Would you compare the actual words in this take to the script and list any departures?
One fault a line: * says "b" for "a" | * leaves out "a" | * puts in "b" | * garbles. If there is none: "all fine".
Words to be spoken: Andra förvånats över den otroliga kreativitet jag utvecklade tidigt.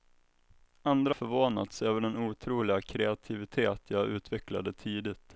all fine